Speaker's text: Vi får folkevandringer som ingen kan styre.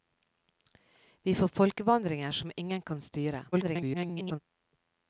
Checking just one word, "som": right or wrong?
right